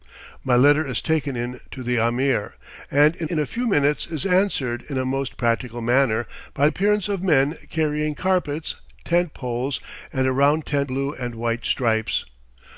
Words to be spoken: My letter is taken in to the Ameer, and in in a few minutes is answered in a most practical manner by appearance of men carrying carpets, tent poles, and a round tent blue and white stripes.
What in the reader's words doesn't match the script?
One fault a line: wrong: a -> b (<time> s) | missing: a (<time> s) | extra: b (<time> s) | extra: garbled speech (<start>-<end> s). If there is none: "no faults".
no faults